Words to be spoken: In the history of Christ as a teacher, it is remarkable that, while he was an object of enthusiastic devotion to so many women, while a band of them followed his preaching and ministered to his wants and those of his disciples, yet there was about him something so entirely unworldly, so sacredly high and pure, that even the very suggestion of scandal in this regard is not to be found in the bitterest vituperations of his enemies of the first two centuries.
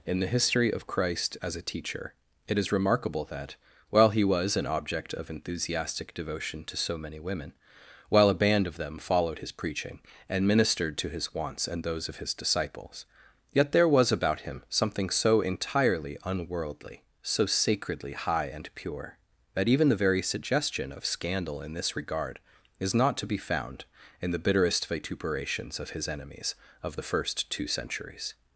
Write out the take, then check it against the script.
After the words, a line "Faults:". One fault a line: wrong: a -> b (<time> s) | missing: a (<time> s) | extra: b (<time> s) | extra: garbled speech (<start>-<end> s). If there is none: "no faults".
In the history of Christ as a teacher, it is remarkable that, while he was an object of enthusiastic devotion to so many women, while a band of them followed his preaching and ministered to his wants and those of his disciples, yet there was about him something so entirely unworldly, so sacredly high and pure, that even the very suggestion of scandal in this regard is not to be found in the bitterest vituperations of his enemies of the first two centuries.
Faults:
no faults